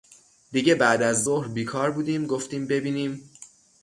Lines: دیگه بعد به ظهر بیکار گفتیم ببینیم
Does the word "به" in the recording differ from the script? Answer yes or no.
yes